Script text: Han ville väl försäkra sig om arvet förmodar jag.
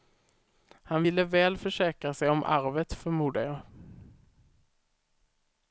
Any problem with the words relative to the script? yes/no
no